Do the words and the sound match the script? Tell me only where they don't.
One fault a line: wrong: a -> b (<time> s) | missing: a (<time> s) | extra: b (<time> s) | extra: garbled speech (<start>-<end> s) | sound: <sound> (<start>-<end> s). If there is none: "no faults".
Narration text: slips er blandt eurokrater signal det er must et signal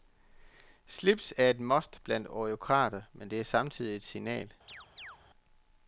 extra: et must (1.5 s)
wrong: signal -> men (3.1 s)
wrong: must -> samtidig (3.4 s)
sound: chirp (4.7-5.2 s)